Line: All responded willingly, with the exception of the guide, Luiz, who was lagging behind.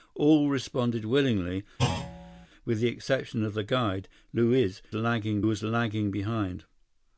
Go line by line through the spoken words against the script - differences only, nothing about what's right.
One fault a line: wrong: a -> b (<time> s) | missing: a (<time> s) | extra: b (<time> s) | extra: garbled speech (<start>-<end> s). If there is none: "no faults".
wrong: who -> lagging (4.9 s)